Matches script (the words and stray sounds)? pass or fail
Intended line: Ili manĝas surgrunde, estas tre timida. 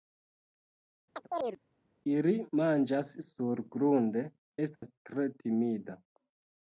fail